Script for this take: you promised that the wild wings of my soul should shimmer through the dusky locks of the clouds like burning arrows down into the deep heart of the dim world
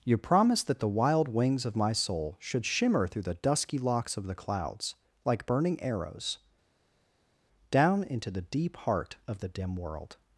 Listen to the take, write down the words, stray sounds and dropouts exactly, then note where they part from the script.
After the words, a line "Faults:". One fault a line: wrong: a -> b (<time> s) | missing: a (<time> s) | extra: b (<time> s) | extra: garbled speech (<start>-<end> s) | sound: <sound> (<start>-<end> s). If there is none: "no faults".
you promised that the wild wings of my soul should shimmer through the dusky locks of the clouds like burning arrows down into the deep heart of the dim world
Faults:
no faults